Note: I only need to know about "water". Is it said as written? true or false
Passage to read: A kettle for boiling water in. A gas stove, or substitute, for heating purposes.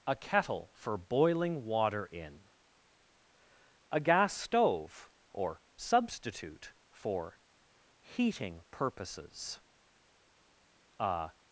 true